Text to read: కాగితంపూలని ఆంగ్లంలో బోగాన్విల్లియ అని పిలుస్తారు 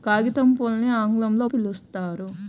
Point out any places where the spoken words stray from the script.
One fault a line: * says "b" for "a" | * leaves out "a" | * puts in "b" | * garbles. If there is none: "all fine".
* leaves out "బోగాన్విల్లియ అని"